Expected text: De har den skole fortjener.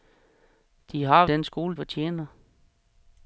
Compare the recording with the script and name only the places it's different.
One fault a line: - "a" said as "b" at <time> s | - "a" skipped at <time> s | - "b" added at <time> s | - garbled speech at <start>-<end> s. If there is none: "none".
none